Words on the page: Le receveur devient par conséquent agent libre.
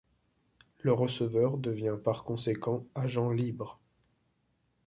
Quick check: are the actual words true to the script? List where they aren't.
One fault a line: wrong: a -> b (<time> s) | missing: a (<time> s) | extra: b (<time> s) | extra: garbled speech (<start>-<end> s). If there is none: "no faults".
no faults